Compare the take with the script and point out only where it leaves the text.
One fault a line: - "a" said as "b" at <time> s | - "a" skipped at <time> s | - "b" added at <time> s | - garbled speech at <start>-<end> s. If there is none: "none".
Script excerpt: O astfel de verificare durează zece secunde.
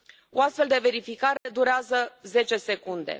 none